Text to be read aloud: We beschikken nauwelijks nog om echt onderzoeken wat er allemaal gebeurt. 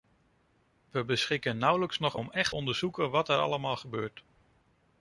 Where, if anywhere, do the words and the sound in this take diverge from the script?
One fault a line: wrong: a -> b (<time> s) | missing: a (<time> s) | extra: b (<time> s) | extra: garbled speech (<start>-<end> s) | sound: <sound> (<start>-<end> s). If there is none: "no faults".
no faults